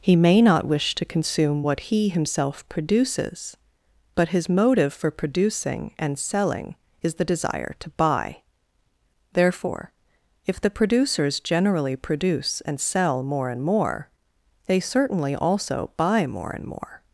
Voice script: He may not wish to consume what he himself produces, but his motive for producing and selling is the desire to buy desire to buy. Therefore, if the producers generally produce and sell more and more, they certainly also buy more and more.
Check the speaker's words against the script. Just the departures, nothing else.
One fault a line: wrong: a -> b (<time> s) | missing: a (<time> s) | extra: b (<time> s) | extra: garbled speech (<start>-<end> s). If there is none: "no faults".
missing: desire to buy (8.4 s)